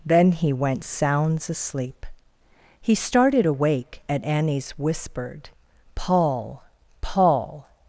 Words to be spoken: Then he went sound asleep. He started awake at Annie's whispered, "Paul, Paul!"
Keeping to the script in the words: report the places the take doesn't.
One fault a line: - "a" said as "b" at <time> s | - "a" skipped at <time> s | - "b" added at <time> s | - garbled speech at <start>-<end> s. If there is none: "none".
- "sound" said as "sounds" at 0.8 s